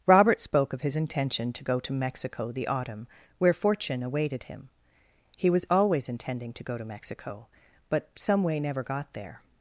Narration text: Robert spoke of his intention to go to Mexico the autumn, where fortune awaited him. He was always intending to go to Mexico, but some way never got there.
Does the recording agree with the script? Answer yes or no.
yes